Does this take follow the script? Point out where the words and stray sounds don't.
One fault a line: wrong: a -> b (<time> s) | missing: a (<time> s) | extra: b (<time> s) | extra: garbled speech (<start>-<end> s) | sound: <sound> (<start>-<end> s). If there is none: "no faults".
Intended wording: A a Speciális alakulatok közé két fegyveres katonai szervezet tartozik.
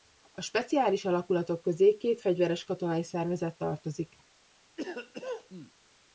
sound: cough (4.8-5.7 s)